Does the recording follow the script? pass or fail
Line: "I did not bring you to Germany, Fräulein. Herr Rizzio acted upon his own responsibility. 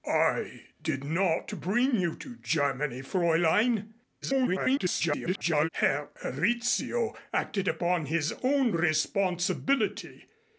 fail